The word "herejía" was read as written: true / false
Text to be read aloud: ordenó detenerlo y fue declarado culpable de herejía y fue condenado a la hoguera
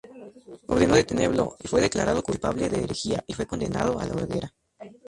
true